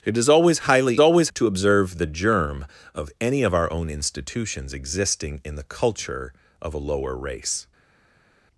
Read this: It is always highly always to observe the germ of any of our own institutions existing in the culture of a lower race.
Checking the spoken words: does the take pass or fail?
pass